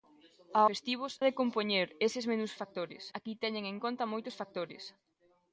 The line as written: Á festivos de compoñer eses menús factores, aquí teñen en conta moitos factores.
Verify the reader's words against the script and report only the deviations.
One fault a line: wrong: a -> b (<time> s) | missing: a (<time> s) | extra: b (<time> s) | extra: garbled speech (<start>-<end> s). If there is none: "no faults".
no faults